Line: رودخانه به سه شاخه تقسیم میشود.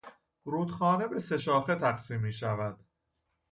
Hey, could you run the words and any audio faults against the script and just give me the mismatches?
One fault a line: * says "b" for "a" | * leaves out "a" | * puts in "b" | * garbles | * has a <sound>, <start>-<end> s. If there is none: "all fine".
all fine